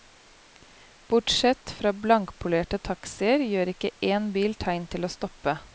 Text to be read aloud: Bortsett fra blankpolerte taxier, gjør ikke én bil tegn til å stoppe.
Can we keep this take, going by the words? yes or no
yes